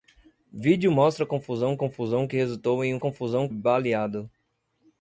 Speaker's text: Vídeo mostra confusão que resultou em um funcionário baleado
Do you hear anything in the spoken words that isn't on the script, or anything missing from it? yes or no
yes